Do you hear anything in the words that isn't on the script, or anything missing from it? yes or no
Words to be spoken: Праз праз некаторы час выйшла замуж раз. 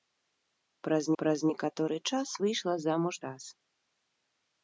no